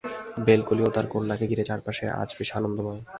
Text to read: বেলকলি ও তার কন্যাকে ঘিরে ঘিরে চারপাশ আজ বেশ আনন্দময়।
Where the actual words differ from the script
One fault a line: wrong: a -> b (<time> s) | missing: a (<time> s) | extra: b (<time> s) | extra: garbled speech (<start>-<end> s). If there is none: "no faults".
missing: ঘিরে (1.6 s)